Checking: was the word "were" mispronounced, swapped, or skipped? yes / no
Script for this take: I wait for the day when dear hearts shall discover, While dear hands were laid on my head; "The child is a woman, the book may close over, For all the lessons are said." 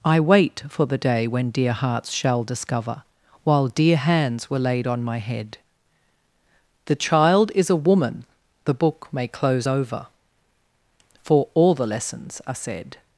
no